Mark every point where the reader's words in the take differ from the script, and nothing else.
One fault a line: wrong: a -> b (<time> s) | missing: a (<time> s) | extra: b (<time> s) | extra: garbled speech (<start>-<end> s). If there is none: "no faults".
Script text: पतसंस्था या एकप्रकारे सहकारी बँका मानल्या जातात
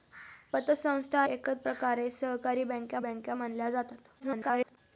missing: या (1.2 s)
extra: बँका (3.0 s)
extra: garbled speech (4.2-4.8 s)